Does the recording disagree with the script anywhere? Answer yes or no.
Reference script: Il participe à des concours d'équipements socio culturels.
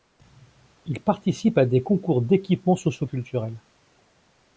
no